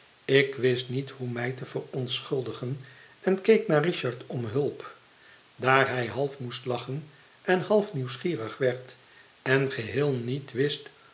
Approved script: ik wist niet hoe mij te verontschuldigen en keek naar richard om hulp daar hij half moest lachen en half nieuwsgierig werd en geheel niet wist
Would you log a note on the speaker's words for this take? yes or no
no